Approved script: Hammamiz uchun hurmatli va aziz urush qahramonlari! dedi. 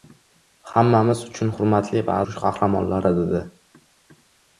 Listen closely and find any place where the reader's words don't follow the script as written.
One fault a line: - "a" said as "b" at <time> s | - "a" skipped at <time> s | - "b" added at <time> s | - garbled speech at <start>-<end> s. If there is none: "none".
- "aziz" skipped at 2.2 s